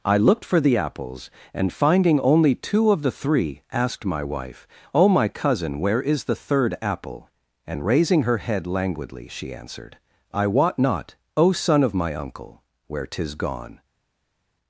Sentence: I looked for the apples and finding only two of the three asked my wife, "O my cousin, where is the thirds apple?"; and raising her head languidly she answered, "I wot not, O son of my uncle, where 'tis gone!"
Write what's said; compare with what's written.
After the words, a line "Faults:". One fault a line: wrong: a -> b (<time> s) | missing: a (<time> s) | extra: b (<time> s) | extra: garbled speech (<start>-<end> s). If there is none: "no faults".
I looked for the apples and finding only two of the three asked my wife, "O my cousin, where is the third apple?"; and raising her head languidly she answered, "I wot not, O son of my uncle, where 'tis gone!"
Faults:
wrong: thirds -> third (6.3 s)